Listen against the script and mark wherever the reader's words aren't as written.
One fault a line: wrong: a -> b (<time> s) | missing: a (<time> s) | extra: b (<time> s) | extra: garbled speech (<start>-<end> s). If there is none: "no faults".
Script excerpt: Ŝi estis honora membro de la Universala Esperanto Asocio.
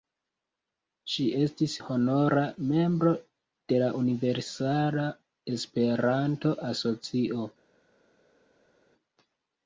no faults